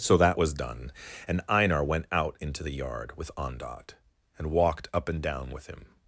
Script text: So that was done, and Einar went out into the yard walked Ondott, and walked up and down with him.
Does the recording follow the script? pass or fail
fail